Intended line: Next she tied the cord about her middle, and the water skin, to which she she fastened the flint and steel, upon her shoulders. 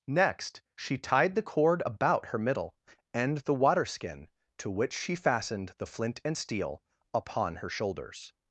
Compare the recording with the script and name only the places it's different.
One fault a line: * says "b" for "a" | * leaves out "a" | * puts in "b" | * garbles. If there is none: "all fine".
* leaves out "she"